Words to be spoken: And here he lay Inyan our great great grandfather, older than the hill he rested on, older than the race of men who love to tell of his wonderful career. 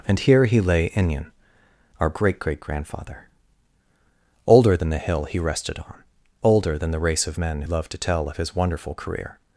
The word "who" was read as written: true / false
false